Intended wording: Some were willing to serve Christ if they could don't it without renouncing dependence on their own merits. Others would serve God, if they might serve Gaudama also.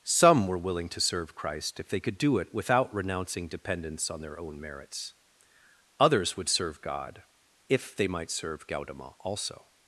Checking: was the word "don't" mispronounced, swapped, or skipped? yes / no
yes